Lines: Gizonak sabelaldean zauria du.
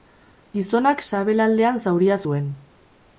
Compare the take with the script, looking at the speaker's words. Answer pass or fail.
fail